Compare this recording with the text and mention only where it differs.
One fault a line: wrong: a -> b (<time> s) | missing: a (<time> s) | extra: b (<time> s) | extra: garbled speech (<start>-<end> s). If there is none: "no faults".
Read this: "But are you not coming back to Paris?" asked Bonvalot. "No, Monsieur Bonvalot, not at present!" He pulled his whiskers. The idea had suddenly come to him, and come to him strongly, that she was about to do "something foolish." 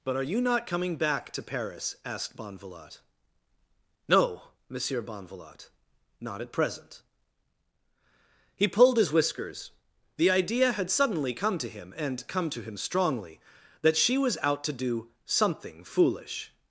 wrong: about -> out (14.4 s)